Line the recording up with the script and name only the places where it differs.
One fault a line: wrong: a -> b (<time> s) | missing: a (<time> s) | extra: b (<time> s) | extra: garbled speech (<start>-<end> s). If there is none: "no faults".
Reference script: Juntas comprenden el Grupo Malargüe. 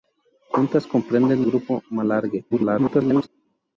missing: el (1.4 s)
extra: garbled speech (2.5-3.3 s)